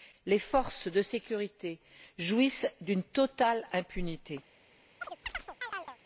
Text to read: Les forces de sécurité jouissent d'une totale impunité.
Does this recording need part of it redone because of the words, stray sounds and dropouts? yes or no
yes